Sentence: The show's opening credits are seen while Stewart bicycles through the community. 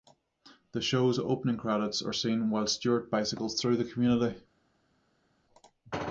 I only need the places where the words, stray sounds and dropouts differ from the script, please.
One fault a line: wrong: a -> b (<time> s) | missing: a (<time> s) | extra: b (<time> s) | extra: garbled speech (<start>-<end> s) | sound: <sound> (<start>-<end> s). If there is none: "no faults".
no faults